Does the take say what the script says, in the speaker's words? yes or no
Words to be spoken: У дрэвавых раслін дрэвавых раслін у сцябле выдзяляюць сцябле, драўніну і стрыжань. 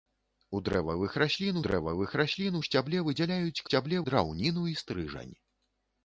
yes